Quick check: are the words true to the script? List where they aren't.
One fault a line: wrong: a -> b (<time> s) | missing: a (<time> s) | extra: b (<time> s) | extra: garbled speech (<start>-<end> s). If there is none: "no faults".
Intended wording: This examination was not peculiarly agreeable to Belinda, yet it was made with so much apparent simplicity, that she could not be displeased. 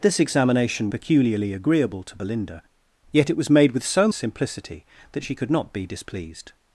missing: was not (0.9 s)
missing: much apparent (4.1 s)